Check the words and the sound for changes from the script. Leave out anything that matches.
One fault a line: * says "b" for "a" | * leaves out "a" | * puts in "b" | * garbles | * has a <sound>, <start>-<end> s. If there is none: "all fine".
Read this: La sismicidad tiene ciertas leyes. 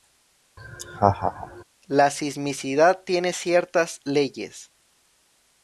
* has a laugh, 0.6-1.6 s